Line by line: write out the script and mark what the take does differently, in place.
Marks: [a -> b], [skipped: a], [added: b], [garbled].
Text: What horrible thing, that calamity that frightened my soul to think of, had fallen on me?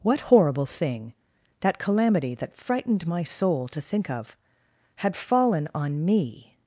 What horrible thing, that calamity that frightened my soul to think of, had fallen on me?